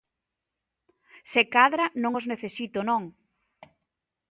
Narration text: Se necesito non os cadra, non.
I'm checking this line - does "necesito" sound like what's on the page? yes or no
no